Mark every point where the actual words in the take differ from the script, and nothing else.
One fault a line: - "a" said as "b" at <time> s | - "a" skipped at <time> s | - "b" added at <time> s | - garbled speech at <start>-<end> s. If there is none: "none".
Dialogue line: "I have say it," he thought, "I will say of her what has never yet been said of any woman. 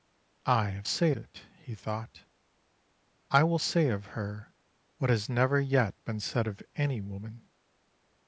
none